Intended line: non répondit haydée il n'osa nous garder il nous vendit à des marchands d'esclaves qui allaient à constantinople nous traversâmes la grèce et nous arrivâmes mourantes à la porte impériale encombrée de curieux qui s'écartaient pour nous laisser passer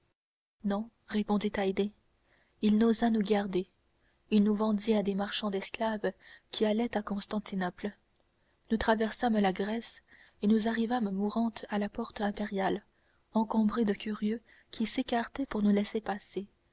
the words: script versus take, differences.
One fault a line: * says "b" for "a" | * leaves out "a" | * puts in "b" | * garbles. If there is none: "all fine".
all fine